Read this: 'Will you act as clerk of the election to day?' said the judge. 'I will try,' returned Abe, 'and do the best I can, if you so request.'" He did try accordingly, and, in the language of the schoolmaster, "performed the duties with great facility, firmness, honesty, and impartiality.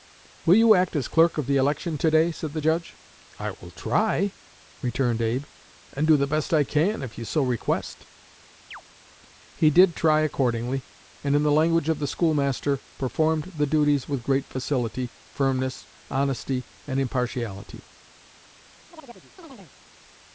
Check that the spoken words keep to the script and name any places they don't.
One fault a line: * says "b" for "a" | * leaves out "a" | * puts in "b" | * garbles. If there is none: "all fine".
all fine